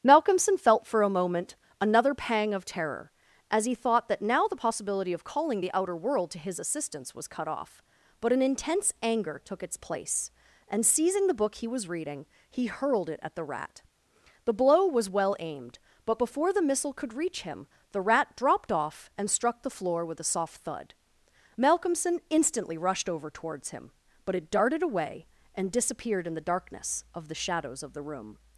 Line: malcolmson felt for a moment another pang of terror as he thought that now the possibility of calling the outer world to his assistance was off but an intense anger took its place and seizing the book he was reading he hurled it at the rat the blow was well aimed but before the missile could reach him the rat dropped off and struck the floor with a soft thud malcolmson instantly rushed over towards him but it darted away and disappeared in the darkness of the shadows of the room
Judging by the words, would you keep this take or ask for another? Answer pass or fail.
fail